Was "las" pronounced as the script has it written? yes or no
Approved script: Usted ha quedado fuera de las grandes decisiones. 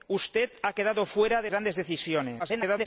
no